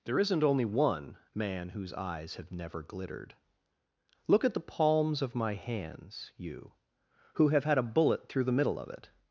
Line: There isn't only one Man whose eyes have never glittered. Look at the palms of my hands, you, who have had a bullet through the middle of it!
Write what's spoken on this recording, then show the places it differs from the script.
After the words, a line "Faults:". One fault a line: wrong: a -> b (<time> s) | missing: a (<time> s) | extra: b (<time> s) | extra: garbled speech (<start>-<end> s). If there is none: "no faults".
There isn't only one Man whose eyes have never glittered. Look at the palms of my hands, you, who have had a bullet through the middle of it!
Faults:
no faults